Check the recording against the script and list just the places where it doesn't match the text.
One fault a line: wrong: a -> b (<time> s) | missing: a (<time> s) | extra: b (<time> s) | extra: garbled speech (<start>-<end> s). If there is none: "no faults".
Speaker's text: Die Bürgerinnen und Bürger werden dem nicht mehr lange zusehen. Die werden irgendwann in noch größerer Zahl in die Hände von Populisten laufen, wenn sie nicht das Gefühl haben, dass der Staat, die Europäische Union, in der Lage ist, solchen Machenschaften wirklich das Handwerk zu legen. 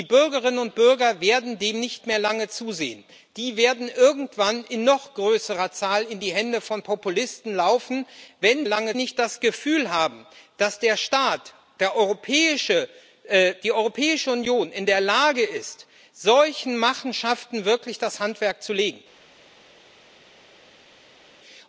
wrong: sie -> lange (8.6 s)